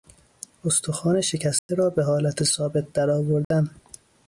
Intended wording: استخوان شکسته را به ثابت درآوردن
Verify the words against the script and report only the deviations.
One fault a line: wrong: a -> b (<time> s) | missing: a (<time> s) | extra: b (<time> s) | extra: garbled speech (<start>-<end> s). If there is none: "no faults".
extra: حالت (2.0 s)